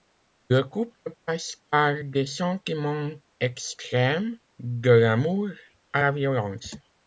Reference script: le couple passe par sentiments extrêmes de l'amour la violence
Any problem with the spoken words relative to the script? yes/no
yes